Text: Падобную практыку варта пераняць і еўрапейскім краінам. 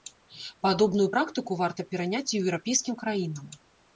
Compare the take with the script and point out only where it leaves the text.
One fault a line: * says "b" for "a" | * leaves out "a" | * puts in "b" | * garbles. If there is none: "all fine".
all fine